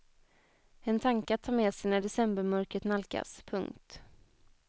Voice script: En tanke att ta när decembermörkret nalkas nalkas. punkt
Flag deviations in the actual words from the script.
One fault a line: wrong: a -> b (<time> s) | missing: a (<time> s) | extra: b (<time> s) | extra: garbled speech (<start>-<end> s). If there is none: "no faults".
extra: med sig (1.5 s)
missing: nalkas (3.4 s)